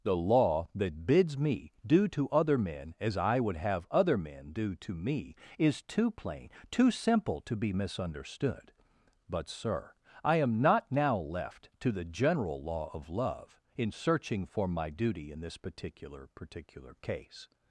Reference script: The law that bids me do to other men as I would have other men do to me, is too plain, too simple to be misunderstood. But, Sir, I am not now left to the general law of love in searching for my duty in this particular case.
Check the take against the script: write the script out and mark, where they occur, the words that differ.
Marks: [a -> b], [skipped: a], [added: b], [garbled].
The law that bids me do to other men as I would have other men do to me, is too plain, too simple to be misunderstood. But, Sir, I am not now left to the general law of love in searching for my duty in this particular [added: particular] case.